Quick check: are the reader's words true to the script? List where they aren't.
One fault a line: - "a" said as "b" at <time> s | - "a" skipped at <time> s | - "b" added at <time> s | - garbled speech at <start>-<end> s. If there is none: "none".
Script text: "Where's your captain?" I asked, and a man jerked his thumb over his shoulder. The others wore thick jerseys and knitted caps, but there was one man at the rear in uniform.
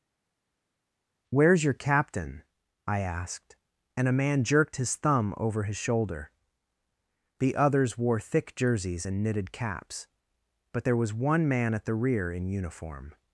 none